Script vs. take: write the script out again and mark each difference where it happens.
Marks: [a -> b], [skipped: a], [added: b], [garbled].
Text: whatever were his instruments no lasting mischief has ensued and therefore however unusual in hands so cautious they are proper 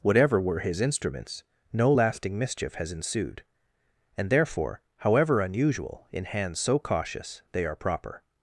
whatever were his instruments no lasting mischief has ensued and therefore however unusual in hands so cautious they are proper